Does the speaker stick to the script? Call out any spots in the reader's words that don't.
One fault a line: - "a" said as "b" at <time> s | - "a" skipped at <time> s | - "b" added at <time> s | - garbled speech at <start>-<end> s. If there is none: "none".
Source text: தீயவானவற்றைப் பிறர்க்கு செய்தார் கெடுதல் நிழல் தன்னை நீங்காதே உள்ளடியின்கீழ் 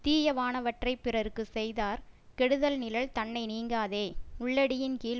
none